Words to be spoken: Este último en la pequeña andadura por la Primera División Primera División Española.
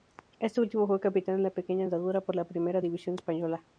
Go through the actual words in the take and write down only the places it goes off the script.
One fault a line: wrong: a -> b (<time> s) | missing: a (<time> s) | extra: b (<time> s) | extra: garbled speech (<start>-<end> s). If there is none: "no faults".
extra: fue capitán (0.9 s)
missing: Primera División (3.1 s)